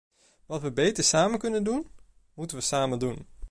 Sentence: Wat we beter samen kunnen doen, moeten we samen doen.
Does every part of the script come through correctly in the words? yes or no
yes